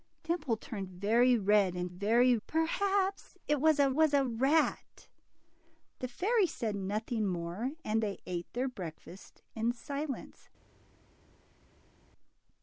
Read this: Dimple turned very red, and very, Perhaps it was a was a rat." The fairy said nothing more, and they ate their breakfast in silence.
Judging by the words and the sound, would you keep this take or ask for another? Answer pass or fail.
pass